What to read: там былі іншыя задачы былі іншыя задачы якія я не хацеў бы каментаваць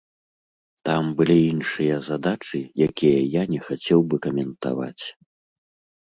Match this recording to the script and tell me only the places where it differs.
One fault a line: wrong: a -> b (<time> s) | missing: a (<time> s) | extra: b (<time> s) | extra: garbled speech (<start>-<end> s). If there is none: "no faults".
missing: былі іншыя задачы (2.6 s)